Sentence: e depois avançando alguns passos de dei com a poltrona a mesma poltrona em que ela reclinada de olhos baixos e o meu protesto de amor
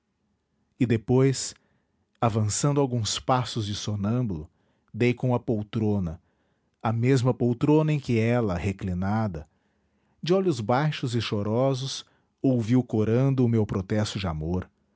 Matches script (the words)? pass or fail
fail